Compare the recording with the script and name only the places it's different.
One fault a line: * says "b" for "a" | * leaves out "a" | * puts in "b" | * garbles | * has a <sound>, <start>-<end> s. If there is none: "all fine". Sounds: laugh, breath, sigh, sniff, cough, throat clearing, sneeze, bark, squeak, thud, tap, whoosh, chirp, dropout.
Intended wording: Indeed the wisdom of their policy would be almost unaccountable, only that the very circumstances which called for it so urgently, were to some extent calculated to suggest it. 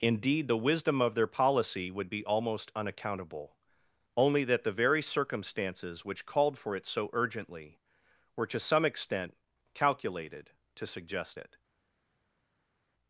all fine